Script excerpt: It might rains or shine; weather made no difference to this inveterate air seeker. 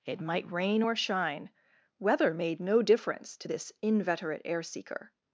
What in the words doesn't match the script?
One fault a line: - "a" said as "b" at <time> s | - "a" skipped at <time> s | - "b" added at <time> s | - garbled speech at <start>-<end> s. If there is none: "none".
- "rains" said as "rain" at 0.5 s